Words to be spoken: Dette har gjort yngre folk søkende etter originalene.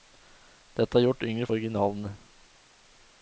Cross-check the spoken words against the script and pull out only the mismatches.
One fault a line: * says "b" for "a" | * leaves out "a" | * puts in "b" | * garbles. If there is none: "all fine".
* leaves out "folk søkende etter"